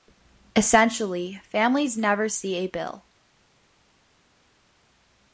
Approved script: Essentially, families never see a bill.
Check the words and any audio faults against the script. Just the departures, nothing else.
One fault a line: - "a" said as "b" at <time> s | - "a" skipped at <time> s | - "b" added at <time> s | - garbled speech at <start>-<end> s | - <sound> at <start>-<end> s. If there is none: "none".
none